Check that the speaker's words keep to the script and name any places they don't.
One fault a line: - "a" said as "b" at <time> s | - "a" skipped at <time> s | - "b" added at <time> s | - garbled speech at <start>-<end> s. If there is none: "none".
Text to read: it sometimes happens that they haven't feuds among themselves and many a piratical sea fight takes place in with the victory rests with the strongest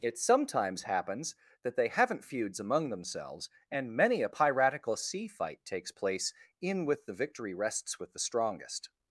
none